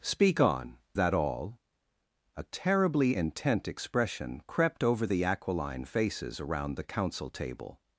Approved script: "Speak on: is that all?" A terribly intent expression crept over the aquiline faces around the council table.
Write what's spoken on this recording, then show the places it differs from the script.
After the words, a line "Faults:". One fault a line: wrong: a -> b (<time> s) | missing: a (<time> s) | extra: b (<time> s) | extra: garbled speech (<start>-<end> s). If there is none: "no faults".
"Speak on: that all?" A terribly intent expression crept over the aquiline faces around the council table.
Faults:
missing: is (0.8 s)